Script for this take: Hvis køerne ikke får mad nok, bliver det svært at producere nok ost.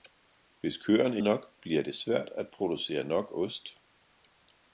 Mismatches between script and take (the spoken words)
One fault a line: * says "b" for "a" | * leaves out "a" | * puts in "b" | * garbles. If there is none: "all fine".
* leaves out "ikke får mad"